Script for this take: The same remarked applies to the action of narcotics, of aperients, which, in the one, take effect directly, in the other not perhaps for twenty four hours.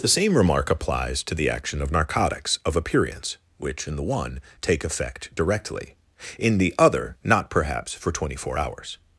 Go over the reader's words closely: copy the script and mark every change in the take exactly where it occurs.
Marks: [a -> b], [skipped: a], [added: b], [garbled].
The same [remarked -> remark] applies to the action of narcotics, of aperients, which, in the one, take effect directly, in the other not perhaps for twenty four hours.